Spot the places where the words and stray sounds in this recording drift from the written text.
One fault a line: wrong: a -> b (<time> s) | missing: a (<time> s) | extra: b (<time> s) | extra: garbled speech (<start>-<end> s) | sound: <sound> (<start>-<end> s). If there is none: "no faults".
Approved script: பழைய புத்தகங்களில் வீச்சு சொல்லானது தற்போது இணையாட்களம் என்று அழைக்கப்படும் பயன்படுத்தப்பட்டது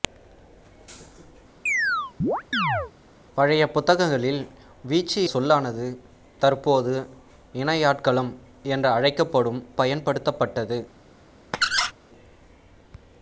sound: chirp (1.7-2.9 s)
sound: squeak (11.5-11.9 s)